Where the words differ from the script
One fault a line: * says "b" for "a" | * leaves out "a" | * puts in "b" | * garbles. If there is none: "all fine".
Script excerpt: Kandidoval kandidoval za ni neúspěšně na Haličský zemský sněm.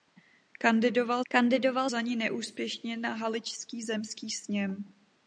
all fine